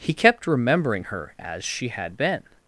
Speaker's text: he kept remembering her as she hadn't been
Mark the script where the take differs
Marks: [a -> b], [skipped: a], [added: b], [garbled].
he kept remembering her as she [hadn't -> had] been